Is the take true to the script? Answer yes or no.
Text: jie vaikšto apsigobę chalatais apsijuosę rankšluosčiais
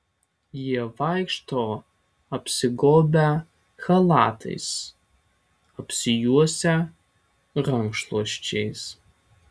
yes